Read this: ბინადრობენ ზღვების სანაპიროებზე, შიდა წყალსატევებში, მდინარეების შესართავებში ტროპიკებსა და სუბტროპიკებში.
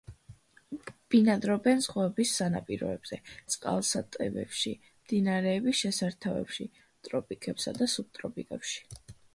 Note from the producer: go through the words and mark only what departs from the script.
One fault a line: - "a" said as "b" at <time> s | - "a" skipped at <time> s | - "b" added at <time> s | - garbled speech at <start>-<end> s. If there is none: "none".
- "შიდა" skipped at 3.2 s